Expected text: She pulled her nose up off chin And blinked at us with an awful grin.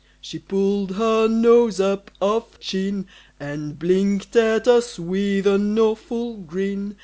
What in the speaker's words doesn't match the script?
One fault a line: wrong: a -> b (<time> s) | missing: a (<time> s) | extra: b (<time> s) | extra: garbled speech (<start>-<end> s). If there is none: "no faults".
no faults